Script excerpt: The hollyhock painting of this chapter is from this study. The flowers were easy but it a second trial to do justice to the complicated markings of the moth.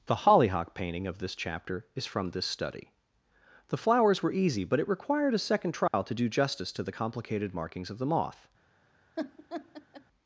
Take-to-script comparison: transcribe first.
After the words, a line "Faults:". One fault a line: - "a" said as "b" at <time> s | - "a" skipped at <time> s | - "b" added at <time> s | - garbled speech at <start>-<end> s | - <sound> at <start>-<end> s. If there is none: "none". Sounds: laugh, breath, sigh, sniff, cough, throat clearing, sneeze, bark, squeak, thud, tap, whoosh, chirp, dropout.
The hollyhock painting of this chapter is from this study. The flowers were easy but it required a second trial to do justice to the complicated markings of the moth.
Faults:
- "required" added at 4.9 s
- dropout at 5.9-5.9 s
- laugh at 9.2-10.0 s